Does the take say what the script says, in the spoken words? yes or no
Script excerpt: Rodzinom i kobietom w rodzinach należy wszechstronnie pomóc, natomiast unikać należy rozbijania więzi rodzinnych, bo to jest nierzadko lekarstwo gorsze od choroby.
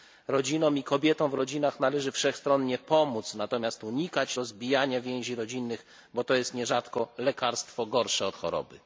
no